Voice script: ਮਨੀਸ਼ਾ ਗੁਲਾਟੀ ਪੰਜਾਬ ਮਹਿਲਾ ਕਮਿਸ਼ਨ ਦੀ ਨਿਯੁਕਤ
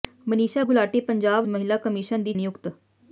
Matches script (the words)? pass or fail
pass